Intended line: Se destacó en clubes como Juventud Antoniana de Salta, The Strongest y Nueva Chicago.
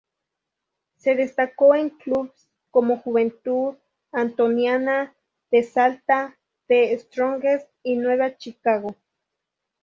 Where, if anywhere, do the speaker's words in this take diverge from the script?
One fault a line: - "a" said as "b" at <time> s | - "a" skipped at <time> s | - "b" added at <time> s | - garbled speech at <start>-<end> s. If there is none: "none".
none